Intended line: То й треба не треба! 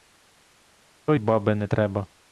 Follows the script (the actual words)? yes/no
no